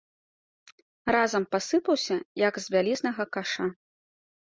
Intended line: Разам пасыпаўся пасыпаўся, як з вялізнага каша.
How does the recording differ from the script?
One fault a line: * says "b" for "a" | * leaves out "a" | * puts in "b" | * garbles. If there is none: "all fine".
* leaves out "пасыпаўся"